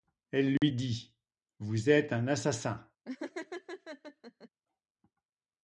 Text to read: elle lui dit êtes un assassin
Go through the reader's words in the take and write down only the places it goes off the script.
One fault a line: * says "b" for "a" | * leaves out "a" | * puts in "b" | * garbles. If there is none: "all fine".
* puts in "vous"